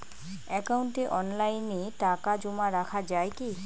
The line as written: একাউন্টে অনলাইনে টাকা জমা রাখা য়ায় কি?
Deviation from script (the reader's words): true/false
false